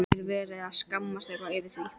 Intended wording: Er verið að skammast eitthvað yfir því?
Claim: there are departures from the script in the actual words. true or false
false